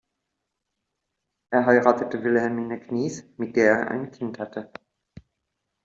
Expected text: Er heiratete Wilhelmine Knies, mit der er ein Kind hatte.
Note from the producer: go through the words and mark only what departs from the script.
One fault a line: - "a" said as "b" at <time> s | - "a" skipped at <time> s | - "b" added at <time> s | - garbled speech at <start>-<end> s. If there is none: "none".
none